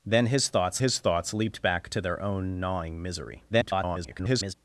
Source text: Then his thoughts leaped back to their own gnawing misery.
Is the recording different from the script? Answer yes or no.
yes